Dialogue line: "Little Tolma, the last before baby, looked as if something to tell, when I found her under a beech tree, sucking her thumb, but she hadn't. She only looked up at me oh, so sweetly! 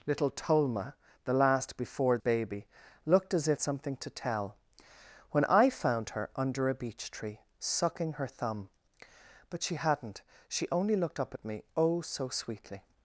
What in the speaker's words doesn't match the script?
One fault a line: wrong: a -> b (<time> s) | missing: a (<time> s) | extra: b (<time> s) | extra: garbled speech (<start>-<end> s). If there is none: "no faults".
no faults